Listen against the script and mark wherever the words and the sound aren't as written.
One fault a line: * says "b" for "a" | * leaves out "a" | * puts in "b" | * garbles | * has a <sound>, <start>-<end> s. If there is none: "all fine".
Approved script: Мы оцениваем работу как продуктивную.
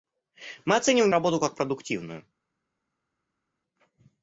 all fine